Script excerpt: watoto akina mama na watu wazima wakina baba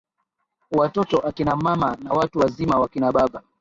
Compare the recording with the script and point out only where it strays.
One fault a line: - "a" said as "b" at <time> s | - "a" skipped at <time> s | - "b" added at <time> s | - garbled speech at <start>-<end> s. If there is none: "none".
none